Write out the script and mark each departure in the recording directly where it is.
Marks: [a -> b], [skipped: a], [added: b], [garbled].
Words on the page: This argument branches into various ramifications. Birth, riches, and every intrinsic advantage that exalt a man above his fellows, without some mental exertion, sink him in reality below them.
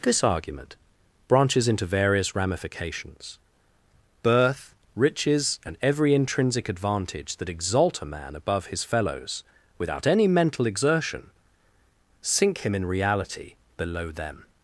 This argument branches into various ramifications. Birth, riches, and every intrinsic advantage that exalt a man above his fellows, without [some -> any] mental exertion, sink him in reality below them.